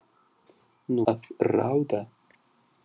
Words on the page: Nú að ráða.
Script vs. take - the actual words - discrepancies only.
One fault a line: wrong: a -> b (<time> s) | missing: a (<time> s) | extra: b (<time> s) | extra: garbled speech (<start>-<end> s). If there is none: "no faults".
no faults